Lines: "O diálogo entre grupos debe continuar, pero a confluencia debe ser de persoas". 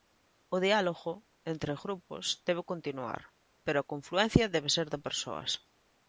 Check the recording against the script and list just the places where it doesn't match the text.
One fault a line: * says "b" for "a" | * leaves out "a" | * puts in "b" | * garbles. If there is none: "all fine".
all fine